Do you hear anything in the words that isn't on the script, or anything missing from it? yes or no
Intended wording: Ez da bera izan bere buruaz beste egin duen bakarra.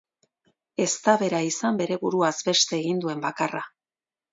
no